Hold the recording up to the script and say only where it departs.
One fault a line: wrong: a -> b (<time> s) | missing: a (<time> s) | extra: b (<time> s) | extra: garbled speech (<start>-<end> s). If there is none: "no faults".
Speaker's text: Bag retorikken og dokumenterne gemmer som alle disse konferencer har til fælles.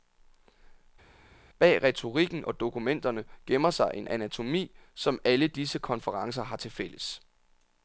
extra: sig en anatomi (3.7 s)